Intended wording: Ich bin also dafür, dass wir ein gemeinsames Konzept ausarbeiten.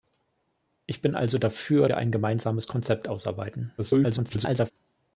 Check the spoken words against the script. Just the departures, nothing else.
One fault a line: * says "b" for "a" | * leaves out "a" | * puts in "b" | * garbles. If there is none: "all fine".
* leaves out "dass"
* garbles